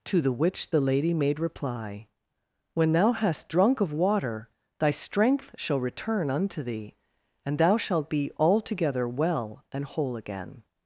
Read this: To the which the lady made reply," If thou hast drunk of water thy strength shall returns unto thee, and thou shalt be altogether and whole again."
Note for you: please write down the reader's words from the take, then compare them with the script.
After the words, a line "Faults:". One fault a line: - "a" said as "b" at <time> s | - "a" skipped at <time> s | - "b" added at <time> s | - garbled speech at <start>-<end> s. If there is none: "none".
To the which the lady made reply," When thou hast drunk of water thy strength shall return unto thee, and thou shalt be altogether well and whole again."
Faults:
- "If" said as "When" at 2.7 s
- "returns" said as "return" at 5.8 s
- "well" added at 9.1 s